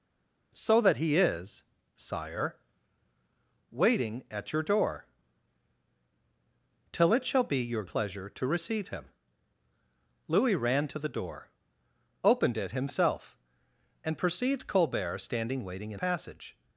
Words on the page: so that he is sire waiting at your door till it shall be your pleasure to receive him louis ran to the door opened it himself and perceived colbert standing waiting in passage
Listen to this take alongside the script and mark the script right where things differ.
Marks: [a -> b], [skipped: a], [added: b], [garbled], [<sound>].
so that he is sire waiting at your door till it shall be your pleasure to receive him louis ran to the door opened it himself and perceived colbert standing waiting in passage